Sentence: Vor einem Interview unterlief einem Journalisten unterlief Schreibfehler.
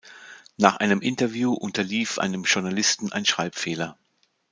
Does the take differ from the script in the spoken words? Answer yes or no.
yes